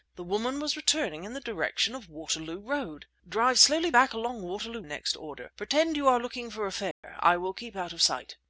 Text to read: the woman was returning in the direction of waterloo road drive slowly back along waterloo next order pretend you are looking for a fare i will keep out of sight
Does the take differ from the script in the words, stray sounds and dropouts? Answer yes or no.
yes